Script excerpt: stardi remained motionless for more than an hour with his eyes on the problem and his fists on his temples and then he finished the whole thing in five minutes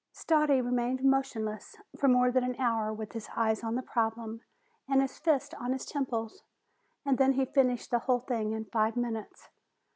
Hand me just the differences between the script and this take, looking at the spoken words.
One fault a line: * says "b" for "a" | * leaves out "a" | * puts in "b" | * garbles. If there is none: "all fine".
all fine